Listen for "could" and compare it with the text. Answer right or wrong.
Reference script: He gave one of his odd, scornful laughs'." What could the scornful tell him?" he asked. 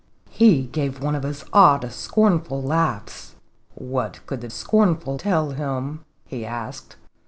right